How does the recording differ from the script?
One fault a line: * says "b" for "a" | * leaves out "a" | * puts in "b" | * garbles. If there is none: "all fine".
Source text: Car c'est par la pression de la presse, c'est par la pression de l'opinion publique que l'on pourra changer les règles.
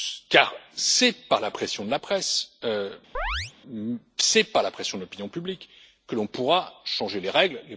all fine